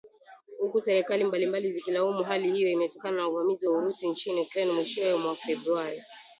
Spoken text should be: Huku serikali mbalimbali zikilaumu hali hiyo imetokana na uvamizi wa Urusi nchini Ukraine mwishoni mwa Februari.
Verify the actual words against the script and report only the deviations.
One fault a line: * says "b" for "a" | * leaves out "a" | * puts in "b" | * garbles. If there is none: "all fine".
all fine